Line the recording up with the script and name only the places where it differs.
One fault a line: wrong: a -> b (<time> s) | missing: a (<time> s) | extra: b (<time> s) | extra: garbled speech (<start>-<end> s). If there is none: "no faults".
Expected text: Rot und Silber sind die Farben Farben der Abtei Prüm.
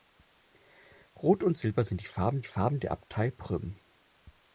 no faults